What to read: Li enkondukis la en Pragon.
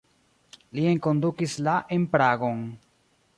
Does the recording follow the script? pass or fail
pass